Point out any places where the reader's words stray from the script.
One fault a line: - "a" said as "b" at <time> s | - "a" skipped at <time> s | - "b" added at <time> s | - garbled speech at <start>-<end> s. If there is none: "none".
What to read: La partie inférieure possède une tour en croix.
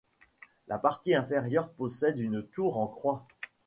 none